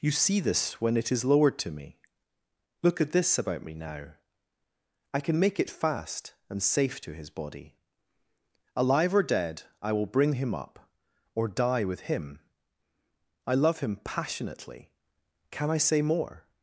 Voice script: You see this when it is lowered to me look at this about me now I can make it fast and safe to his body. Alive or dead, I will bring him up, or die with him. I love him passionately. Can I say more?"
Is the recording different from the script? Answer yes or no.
no